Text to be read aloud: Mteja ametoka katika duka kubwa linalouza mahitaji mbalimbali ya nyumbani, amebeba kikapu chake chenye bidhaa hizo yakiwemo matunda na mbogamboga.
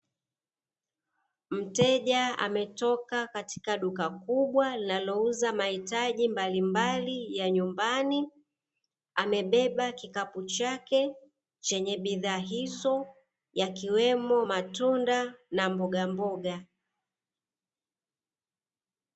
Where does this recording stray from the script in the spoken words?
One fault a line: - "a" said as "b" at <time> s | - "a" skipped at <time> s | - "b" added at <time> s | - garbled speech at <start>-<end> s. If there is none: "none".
none